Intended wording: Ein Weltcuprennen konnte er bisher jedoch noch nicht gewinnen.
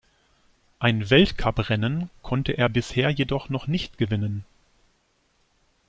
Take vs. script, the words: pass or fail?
pass